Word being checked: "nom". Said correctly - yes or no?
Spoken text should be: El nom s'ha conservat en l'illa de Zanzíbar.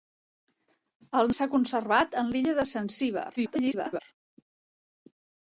no